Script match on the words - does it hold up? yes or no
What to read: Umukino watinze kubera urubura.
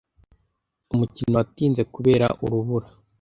yes